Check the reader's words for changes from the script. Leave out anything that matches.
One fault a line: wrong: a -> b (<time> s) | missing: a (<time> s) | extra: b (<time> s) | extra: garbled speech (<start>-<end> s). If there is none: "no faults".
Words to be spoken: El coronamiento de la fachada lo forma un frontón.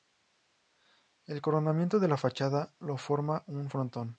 no faults